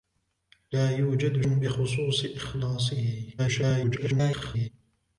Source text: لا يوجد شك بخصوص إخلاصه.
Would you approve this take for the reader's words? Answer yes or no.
no